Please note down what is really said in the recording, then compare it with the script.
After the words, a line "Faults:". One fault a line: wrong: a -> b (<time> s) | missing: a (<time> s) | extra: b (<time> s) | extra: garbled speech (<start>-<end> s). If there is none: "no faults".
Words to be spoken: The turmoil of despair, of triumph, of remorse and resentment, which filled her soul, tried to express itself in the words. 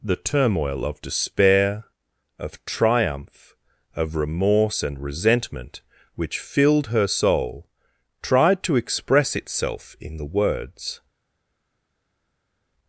The turmoil of despair, of triumph, of remorse and resentment, which filled her soul, tried to express itself in the words.
Faults:
no faults